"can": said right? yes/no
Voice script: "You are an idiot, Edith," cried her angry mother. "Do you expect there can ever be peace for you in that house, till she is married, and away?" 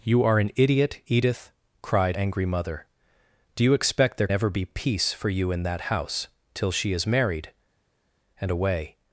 no